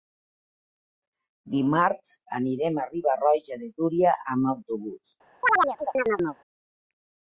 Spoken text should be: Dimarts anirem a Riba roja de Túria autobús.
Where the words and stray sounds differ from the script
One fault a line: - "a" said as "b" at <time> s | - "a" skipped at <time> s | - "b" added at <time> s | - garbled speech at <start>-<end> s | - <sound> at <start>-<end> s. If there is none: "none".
- "amb" added at 4.4 s
- chirp at 5.4-6.4 s